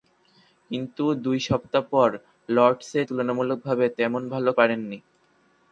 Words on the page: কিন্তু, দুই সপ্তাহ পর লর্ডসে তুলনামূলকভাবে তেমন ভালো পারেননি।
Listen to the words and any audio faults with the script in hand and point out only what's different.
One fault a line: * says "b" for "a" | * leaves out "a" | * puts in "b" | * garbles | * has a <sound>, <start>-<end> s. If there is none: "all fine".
all fine